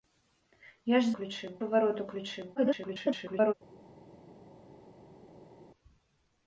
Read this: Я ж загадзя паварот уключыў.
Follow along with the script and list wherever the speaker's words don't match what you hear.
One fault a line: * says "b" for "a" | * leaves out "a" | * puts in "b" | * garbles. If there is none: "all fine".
* says "уключыў" for "загадзя"
* garbles